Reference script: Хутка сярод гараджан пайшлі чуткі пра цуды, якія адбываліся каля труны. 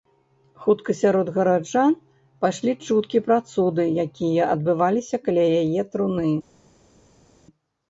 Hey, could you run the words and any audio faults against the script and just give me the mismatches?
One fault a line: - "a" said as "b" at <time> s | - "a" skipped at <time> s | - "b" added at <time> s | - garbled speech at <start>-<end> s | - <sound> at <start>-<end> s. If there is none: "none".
- "яе" added at 5.6 s